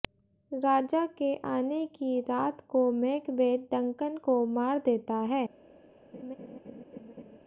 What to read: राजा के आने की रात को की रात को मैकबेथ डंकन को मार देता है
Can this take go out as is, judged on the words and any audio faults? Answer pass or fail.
fail